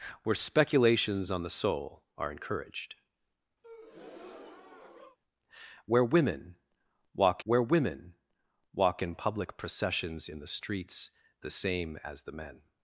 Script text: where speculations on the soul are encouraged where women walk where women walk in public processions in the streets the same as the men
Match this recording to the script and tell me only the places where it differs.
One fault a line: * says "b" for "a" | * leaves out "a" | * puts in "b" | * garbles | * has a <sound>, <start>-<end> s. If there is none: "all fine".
* has a breath, 3.6-5.2 s